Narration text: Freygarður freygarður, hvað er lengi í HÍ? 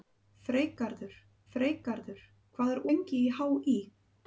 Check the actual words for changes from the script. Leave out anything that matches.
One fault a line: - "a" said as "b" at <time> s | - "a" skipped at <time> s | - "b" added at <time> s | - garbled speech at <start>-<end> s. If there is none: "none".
none